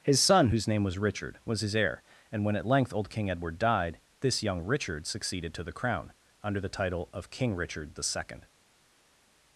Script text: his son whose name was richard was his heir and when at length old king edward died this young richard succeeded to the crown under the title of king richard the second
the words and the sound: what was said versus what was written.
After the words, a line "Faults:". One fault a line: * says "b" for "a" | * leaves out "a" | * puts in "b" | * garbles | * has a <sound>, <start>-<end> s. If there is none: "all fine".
his son whose name was richard was his heir and when at length old king edward died this young richard succeeded to the crown under the title of king richard the second
Faults:
all fine